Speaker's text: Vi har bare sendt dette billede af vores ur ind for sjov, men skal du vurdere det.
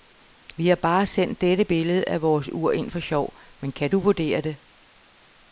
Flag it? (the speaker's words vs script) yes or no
yes